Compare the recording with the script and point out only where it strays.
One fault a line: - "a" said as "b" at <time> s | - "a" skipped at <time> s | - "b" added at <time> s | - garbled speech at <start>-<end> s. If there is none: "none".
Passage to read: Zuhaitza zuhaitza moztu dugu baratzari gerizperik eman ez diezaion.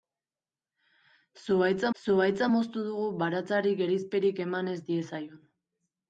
none